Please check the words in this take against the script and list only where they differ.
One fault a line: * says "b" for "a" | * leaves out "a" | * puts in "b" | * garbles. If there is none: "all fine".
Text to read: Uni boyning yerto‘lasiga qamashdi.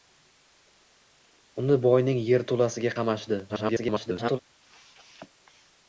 * garbles